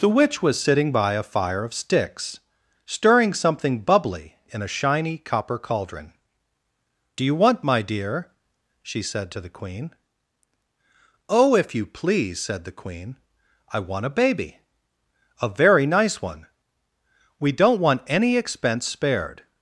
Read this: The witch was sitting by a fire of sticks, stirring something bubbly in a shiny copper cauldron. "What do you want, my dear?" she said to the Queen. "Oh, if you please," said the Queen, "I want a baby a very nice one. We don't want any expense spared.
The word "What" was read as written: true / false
false